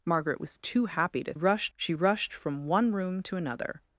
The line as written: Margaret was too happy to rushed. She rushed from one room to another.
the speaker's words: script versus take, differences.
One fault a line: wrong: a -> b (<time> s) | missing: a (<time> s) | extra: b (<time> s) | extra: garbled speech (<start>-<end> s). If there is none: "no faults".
no faults